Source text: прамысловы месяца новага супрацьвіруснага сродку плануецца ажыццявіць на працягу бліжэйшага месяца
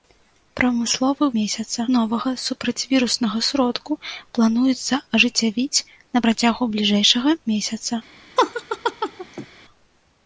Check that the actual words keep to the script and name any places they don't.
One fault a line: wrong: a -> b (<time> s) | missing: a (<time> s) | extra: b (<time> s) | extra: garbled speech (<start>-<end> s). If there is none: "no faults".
no faults